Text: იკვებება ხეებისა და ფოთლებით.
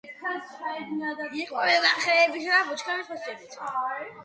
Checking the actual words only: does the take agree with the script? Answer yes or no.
no